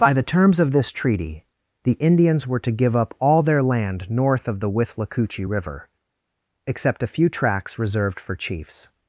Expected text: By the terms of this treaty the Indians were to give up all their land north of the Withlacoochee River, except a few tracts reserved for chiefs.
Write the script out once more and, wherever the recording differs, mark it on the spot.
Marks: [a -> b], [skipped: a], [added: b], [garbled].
By the terms of this treaty the Indians were to give up all their land north of the Withlacoochee River, except a few tracts reserved for chiefs.